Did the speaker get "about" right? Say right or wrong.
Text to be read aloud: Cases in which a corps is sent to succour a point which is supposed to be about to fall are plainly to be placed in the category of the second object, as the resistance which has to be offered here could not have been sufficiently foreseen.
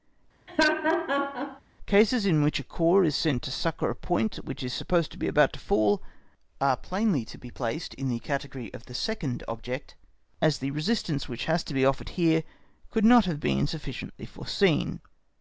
right